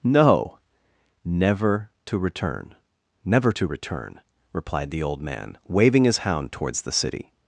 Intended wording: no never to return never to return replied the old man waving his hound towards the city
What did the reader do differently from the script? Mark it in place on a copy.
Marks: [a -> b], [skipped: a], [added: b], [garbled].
no never to return never to return replied the old man waving his hound towards the city